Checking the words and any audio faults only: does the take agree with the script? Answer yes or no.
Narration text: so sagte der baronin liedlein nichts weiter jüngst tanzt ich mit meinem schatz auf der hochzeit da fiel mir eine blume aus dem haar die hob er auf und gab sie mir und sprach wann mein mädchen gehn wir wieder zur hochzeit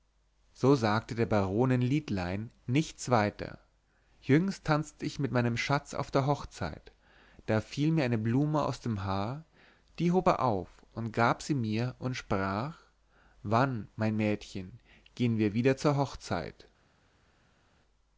yes